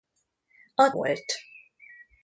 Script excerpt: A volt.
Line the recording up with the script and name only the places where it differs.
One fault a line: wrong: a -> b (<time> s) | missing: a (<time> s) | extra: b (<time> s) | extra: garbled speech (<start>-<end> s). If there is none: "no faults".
no faults